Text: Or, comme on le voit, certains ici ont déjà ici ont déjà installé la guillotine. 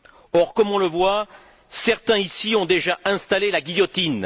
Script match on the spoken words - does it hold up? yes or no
no